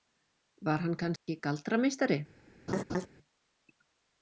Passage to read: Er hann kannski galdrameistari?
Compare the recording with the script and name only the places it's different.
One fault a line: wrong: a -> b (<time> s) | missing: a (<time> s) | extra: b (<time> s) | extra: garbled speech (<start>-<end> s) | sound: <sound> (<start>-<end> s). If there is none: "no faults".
wrong: Er -> Var (0.7 s)
sound: dropout (1.2-1.3 s)
sound: laugh (2.7-3.1 s)